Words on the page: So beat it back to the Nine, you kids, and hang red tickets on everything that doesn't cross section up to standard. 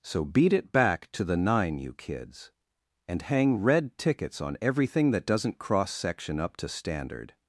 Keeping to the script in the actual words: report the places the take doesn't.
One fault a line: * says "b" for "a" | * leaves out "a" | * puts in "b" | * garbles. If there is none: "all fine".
all fine